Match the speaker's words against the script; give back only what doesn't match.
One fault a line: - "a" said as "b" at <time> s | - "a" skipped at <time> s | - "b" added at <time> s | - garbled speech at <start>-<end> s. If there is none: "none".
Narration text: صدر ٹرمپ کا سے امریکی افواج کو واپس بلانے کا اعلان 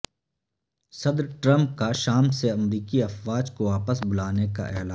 - "شام" added at 1.9 s